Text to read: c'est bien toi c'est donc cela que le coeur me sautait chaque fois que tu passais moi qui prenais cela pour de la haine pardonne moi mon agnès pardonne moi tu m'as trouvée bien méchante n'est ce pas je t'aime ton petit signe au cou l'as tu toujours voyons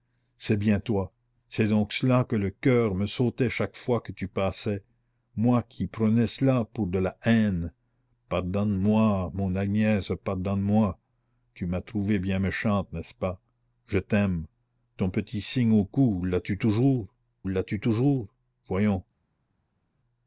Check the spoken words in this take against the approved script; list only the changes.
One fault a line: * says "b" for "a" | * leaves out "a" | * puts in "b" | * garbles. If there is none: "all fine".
* puts in "l'as tu toujours"